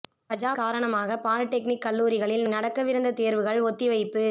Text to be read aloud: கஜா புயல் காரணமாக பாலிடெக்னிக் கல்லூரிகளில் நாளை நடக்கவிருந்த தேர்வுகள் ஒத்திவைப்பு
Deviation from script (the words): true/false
true